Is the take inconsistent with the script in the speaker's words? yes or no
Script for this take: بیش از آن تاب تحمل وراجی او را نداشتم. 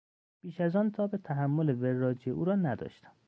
no